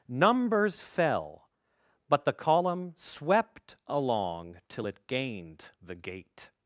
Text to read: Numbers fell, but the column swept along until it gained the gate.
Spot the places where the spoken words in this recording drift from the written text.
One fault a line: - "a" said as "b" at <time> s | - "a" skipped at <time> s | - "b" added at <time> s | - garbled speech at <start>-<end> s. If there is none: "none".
- "until" said as "till" at 4.7 s